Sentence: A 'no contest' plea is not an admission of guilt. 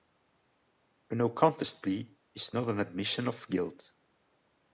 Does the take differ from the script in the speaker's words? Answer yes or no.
no